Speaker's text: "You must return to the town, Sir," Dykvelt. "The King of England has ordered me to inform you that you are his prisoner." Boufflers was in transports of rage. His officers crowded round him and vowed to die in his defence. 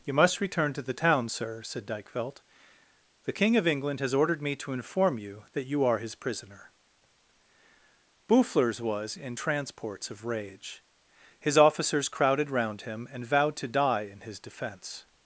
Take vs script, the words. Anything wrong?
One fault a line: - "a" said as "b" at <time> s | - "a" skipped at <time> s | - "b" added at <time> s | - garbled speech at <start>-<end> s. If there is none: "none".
- "said" added at 1.6 s